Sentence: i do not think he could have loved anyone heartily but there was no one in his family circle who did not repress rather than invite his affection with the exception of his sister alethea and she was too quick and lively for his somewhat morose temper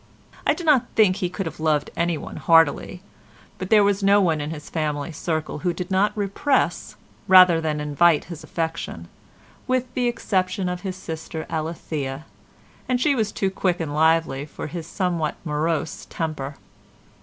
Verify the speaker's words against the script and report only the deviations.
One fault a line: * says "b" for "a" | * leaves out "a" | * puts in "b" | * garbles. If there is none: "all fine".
all fine